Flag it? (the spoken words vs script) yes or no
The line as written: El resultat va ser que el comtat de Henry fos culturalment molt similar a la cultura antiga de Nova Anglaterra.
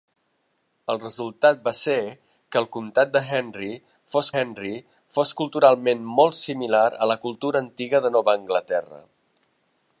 yes